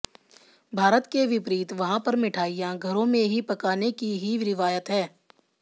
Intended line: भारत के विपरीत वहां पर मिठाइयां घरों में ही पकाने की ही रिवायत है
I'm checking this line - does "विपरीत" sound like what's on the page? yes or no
yes